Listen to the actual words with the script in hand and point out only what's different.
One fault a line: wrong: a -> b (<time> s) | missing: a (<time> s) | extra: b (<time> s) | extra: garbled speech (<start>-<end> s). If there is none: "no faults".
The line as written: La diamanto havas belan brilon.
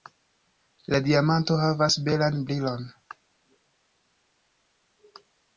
no faults